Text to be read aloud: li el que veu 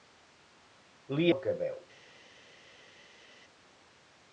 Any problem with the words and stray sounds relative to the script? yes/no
no